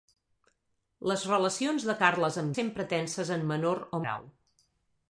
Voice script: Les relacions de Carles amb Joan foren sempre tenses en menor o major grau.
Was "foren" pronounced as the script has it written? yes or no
no